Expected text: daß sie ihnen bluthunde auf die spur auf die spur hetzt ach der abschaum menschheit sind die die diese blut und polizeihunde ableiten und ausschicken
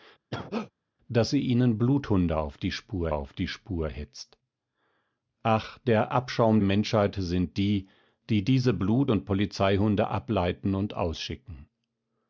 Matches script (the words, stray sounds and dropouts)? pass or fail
fail